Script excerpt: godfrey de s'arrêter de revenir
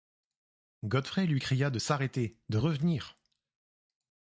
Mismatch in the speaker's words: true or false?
true